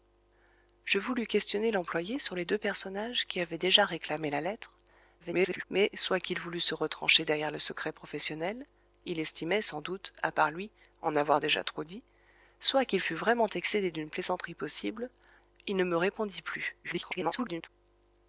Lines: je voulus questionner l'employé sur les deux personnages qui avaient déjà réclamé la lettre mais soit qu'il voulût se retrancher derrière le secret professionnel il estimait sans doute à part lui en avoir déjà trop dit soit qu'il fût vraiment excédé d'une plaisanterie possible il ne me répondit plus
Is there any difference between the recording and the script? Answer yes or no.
yes